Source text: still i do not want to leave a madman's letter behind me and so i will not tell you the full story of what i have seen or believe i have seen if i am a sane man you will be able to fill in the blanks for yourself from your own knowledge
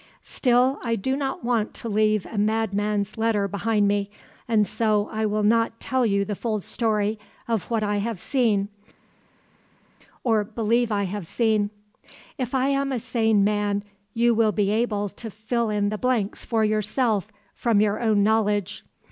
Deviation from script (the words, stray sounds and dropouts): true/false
false